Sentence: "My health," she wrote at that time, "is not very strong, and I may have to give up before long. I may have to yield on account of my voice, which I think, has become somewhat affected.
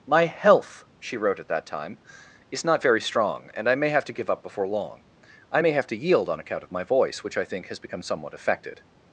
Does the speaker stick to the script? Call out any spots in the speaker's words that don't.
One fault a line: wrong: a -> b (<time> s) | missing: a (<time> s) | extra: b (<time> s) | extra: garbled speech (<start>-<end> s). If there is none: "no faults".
no faults